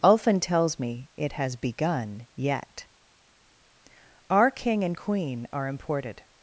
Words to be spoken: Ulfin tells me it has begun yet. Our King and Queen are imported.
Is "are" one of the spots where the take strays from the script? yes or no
no